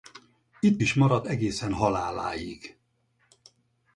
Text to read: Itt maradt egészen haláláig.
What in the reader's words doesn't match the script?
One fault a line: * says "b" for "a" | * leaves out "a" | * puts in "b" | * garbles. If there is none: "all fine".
* puts in "is"